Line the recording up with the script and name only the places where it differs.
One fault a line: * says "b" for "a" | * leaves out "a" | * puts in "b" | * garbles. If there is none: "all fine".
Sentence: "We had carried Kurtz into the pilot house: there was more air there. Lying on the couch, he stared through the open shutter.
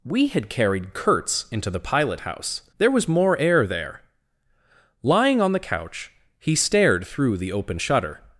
all fine